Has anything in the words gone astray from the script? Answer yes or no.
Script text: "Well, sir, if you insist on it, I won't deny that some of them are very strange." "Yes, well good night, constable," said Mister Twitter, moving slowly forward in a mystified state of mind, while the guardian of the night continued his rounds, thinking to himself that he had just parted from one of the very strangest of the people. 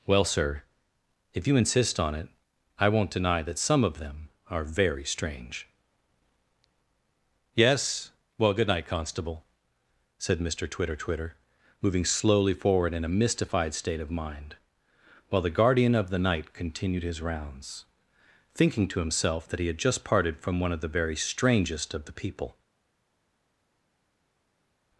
yes